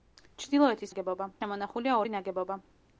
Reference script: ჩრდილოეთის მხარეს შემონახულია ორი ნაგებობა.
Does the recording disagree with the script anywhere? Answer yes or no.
yes